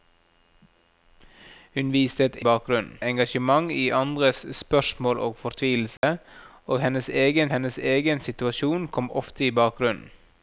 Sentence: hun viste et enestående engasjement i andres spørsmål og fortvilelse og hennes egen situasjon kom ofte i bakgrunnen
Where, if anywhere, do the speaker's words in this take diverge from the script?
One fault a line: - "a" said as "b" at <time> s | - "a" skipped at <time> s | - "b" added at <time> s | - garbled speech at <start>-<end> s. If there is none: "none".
- "enestående" said as "bakgrunnen" at 2.4 s
- "hennes egen" added at 7.5 s